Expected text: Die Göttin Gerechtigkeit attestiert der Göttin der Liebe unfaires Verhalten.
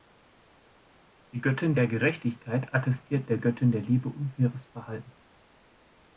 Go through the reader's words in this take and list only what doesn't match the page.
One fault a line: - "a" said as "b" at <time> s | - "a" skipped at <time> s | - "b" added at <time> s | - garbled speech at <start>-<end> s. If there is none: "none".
- "der" added at 1.7 s